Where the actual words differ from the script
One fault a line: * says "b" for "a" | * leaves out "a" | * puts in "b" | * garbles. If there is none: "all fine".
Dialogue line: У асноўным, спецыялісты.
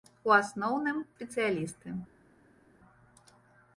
all fine